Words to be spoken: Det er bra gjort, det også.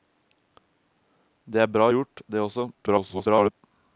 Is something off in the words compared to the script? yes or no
yes